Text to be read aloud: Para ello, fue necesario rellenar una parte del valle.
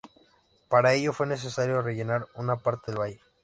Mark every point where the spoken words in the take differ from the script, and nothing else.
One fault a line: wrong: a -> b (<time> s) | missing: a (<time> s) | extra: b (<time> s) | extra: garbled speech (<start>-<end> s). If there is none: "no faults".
no faults